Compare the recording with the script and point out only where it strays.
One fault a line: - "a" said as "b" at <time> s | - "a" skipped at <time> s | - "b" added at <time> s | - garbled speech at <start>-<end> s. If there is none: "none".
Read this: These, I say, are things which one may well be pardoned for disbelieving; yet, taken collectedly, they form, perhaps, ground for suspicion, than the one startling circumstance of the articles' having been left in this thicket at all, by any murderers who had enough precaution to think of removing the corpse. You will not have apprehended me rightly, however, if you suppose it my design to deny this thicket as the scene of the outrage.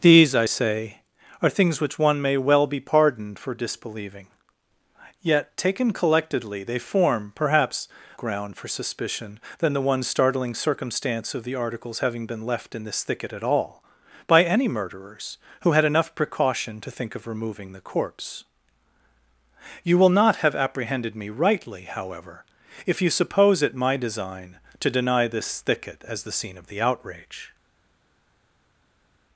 none